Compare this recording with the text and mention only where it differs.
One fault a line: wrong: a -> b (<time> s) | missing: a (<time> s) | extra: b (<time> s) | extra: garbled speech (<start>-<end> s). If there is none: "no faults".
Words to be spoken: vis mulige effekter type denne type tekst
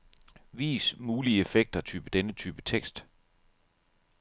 no faults